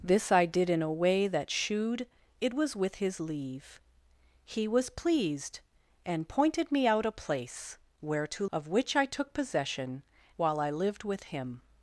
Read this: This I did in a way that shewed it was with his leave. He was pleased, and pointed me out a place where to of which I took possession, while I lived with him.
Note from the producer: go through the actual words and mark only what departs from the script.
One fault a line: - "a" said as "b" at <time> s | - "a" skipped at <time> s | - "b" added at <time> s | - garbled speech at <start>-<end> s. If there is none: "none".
none